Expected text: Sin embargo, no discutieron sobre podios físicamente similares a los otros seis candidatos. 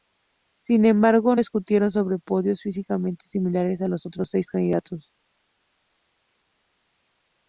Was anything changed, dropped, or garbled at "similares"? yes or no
no